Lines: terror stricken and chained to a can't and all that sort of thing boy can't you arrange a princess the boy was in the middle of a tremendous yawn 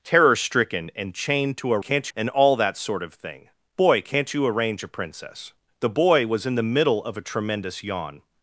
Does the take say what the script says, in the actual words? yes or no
yes